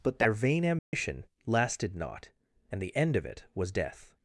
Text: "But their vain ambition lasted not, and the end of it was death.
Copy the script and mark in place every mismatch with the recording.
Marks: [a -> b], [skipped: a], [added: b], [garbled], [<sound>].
"But their vain ambition [dropout] lasted not, and the end of it was death.